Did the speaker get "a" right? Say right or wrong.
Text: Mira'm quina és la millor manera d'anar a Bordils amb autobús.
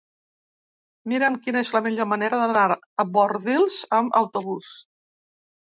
right